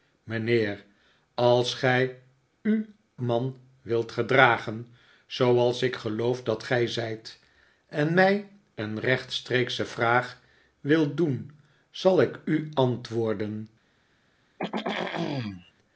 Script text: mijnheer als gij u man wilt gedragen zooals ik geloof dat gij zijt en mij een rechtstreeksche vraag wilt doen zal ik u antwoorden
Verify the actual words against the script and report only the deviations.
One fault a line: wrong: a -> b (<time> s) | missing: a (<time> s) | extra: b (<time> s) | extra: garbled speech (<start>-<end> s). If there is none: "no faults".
no faults